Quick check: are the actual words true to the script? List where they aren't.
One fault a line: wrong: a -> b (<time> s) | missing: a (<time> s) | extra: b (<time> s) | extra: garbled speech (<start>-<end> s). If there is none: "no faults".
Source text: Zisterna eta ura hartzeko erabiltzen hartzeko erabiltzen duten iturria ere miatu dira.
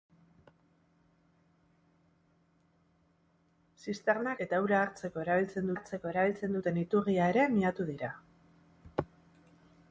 no faults